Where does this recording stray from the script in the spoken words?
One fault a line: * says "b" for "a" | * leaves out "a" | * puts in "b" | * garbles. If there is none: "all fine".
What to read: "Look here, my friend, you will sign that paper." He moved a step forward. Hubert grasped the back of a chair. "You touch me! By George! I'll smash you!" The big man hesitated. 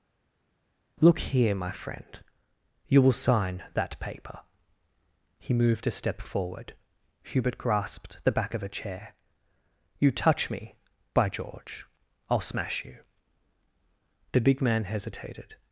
all fine